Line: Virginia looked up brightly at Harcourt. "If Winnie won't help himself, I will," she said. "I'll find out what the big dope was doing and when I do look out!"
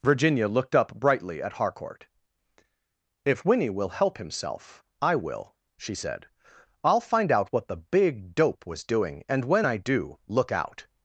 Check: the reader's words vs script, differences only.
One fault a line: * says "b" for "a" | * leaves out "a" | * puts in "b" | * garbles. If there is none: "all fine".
* says "will" for "won't"